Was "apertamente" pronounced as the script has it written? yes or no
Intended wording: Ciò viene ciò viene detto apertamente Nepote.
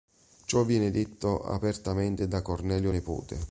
no